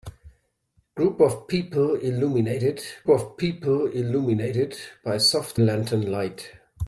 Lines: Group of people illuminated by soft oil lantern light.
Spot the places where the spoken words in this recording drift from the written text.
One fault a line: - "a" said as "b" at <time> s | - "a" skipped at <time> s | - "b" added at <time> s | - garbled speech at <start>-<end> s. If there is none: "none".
- "of people illuminated" added at 3.1 s
- "oil" skipped at 5.6 s